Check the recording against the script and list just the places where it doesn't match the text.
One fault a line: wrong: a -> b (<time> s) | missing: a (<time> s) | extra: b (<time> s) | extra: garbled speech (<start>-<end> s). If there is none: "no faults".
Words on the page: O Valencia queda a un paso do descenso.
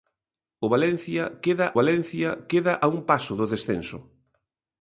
extra: Valencia queda (1.8 s)